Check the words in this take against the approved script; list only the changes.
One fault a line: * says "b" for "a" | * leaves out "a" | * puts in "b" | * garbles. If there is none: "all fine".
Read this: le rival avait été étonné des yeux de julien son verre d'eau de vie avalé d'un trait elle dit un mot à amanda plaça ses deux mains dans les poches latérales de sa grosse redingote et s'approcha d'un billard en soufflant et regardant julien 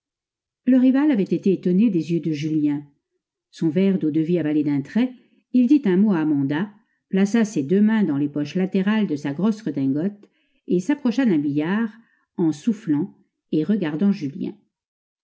* says "il" for "elle"